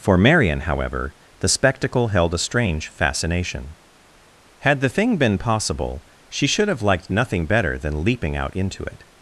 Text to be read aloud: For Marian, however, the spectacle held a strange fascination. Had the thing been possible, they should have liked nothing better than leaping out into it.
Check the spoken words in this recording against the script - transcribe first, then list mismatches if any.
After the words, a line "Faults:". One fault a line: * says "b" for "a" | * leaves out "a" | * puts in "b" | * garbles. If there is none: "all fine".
For Marian, however, the spectacle held a strange fascination. Had the thing been possible, she should have liked nothing better than leaping out into it.
Faults:
* says "she" for "they"